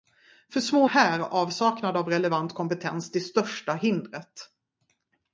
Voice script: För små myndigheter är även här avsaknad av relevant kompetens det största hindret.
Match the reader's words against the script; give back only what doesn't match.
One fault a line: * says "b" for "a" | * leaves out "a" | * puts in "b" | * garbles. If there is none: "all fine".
* leaves out "myndigheter är även"